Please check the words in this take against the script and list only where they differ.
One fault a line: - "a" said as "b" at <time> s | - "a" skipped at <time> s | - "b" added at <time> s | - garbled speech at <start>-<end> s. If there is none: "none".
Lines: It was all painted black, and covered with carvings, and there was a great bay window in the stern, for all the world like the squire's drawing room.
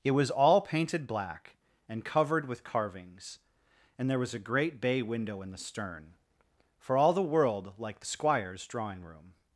none